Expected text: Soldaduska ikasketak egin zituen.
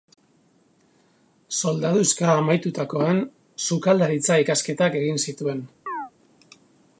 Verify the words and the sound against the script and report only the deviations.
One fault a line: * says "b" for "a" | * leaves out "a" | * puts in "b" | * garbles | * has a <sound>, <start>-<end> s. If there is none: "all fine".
* puts in "amaitutakoan sukaldaritza"
* has a chirp, 5.9-6.1 s